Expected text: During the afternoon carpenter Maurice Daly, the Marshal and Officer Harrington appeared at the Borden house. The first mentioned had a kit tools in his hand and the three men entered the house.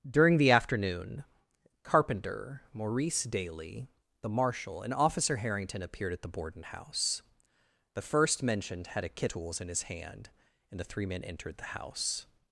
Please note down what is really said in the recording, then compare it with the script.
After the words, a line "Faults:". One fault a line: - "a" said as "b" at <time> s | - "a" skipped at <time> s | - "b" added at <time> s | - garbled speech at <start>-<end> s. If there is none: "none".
During the afternoon carpenter Maurice Daly, the Marshal and Officer Harrington appeared at the Borden house. The first mentioned had a kit tools in his hand and the three men entered the house.
Faults:
none